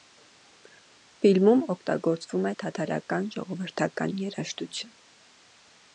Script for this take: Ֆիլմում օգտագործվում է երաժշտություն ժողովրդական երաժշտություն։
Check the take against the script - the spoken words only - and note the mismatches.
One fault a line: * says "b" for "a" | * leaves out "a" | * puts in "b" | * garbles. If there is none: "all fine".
* says "թաթարական" for "երաժշտություն"